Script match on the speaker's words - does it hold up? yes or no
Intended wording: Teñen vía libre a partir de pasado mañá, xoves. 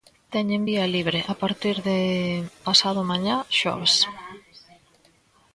yes